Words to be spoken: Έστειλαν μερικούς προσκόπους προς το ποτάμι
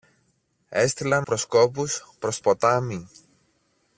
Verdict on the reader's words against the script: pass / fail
fail